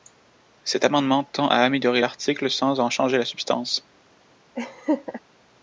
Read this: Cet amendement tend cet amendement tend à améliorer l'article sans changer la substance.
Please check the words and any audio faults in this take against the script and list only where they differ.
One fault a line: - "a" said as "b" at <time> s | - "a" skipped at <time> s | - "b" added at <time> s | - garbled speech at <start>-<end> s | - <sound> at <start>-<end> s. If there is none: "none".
- "cet amendement tend" skipped at 1.5 s
- "en" added at 2.8 s
- laugh at 4.6-5.2 s